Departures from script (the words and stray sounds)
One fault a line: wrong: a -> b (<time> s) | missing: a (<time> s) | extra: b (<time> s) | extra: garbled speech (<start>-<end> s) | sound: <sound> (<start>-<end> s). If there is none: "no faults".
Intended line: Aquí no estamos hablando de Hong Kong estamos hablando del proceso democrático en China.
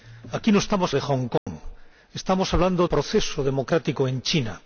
missing: hablando (0.9 s)
sound: dropout (1.4-1.5 s)
missing: del (2.9 s)